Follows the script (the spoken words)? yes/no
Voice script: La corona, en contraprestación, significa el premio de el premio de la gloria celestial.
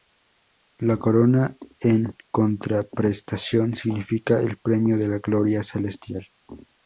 no